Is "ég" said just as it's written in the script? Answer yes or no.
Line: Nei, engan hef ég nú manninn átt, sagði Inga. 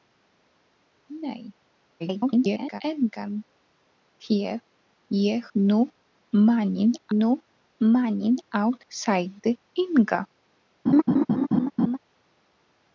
yes